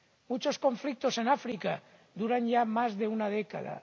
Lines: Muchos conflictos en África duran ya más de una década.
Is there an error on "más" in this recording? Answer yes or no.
no